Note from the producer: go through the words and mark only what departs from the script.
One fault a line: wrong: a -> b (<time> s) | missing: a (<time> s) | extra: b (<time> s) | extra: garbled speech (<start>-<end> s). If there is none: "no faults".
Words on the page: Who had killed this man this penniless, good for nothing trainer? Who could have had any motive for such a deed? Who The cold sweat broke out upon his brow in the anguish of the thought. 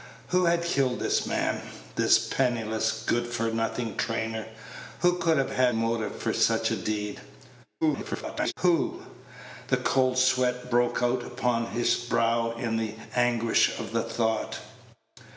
missing: any (5.8 s)
extra: garbled speech (7.8-8.5 s)